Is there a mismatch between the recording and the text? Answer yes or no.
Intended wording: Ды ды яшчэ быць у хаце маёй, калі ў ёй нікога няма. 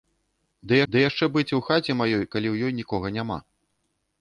no